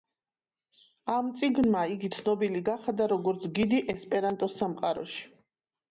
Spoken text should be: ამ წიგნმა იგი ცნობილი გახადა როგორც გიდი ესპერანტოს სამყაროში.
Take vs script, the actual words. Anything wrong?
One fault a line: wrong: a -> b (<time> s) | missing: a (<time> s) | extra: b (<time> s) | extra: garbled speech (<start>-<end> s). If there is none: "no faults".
no faults